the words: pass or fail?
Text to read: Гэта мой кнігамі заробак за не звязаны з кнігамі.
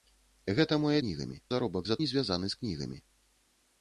pass